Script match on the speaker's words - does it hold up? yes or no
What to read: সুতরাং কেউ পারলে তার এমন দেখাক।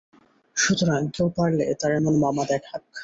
no